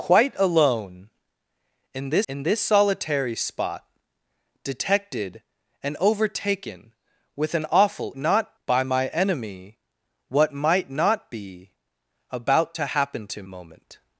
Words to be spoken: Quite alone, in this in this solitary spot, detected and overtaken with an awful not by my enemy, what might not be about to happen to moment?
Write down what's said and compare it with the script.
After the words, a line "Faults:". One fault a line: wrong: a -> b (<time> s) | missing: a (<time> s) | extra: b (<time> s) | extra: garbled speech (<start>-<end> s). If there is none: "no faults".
Quite alone, in this in this solitary spot, detected and overtaken with an awful not by my enemy, what might not be about to happen to moment?
Faults:
no faults